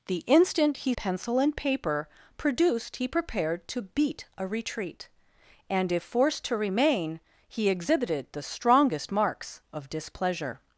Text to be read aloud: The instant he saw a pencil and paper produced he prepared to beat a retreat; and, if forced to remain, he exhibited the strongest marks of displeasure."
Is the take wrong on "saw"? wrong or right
wrong